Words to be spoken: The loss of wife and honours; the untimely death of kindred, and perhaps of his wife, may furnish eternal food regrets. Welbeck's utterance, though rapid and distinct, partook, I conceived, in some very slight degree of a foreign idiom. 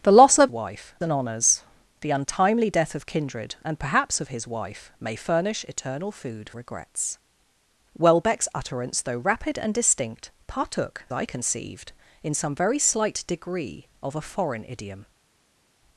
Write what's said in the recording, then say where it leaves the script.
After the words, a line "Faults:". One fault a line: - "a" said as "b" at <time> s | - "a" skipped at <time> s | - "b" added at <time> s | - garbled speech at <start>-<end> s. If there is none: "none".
The loss of wife and honours; the untimely death of kindred, and perhaps of his wife, may furnish eternal food regrets. Welbeck's utterance, though rapid and distinct, partook, I conceived, in some very slight degree of a foreign idiom.
Faults:
none